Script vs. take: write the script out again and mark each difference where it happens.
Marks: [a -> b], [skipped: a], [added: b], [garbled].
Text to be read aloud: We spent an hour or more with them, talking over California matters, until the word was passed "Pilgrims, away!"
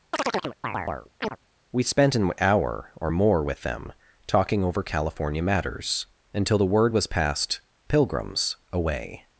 We spent an hour or more with them, talking over California matters, until the word was passed "Pilgrims, away!"